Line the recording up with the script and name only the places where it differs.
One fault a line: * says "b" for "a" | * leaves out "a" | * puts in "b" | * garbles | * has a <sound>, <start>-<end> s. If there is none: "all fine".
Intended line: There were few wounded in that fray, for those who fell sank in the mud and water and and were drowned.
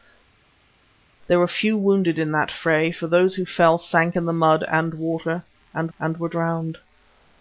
all fine